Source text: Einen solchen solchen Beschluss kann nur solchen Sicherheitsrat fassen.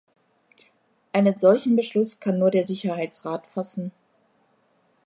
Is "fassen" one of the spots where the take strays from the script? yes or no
no